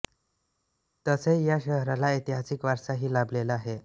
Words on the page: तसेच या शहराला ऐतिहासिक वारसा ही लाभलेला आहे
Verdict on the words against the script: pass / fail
pass